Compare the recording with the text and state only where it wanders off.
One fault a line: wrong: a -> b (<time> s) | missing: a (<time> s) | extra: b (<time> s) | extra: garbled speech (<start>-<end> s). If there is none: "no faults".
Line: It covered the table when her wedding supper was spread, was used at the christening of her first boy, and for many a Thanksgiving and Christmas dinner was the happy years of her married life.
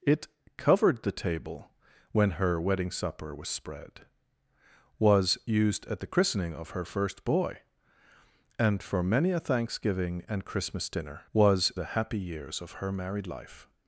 no faults